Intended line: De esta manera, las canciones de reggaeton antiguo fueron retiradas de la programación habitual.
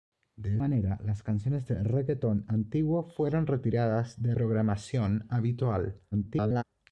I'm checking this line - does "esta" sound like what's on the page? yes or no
no